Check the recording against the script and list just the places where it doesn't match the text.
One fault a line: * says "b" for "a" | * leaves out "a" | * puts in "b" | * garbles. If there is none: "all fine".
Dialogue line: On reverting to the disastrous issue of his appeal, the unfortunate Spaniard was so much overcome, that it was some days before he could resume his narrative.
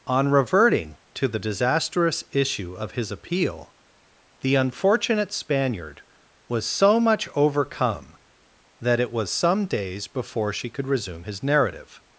* says "she" for "he"